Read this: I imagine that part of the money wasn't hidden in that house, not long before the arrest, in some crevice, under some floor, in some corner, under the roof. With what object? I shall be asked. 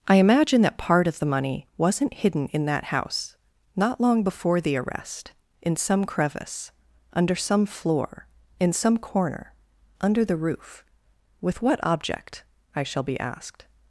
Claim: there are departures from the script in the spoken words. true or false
false